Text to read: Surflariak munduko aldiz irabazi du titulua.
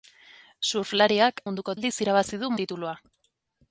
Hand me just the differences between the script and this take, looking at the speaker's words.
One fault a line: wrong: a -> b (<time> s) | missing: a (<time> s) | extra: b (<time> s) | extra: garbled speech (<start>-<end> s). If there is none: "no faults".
no faults